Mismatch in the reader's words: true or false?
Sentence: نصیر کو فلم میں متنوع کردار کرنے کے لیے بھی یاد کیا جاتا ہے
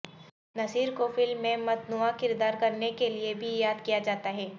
false